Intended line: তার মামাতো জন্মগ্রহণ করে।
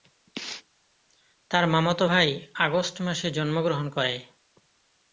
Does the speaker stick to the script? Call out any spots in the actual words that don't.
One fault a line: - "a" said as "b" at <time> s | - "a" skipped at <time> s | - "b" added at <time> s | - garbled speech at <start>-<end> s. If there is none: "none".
- "ভাই আগস্ট মাসে" added at 2.0 s